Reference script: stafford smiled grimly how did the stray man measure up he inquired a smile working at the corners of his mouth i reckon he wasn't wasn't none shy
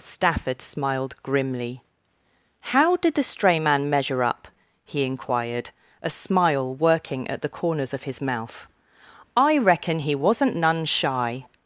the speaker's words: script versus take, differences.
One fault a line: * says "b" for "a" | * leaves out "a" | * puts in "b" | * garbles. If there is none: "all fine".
* leaves out "wasn't"